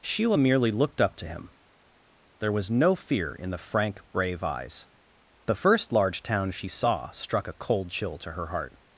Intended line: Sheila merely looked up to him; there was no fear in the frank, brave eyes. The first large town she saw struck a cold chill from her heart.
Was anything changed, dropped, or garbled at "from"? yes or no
yes